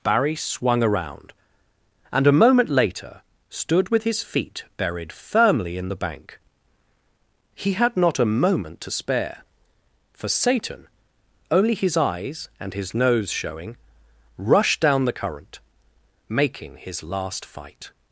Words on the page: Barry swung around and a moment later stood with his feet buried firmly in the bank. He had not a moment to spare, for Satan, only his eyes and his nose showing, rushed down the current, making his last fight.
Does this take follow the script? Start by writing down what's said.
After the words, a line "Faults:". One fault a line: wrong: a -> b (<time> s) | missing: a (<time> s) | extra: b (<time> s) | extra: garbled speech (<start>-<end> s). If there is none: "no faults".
Barry swung around and a moment later stood with his feet buried firmly in the bank. He had not a moment to spare, for Satan, only his eyes and his nose showing, rushed down the current, making his last fight.
Faults:
no faults